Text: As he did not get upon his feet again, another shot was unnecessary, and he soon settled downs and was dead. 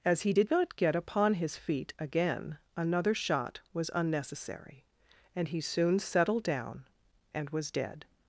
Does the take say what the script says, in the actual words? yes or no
no